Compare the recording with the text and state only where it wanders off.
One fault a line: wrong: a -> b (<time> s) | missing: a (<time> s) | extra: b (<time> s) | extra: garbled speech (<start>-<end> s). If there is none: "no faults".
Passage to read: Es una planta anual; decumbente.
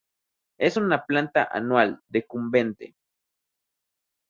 no faults